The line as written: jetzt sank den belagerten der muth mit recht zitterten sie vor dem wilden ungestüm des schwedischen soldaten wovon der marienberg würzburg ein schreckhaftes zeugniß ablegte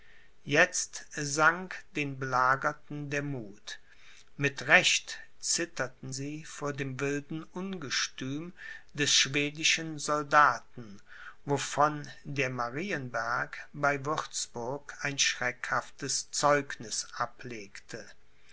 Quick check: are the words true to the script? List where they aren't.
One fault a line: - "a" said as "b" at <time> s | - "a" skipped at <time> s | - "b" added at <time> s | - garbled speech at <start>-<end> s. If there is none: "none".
- "bei" added at 13.7 s